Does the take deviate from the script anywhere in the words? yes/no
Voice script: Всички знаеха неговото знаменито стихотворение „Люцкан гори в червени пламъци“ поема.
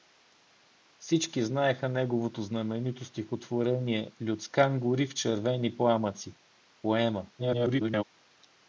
yes